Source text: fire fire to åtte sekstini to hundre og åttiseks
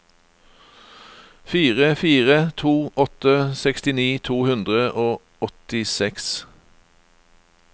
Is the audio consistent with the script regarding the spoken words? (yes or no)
yes